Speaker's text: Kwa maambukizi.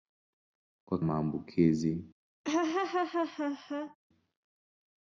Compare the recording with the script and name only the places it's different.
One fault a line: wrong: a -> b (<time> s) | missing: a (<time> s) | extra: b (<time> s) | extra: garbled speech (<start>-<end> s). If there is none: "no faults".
no faults